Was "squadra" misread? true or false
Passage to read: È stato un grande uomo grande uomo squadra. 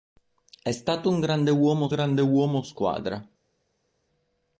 false